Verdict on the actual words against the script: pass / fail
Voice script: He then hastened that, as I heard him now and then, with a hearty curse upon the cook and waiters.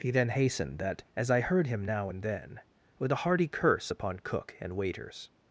fail